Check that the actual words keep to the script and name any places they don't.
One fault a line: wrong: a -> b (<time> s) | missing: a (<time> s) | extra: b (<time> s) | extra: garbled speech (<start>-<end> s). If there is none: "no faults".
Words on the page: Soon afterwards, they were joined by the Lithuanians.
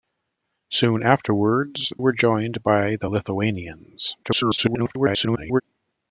missing: they (1.9 s)
extra: garbled speech (4.2-5.6 s)